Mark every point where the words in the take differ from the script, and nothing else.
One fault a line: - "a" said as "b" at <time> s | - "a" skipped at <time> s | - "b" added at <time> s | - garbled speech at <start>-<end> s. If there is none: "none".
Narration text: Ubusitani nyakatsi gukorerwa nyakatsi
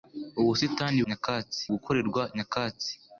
none